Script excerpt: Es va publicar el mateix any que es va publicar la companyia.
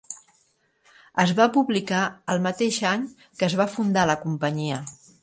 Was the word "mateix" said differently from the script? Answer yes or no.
no